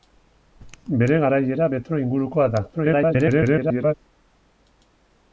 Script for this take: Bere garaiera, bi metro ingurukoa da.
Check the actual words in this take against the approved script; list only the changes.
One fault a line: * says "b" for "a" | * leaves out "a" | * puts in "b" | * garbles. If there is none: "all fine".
* leaves out "bi"
* garbles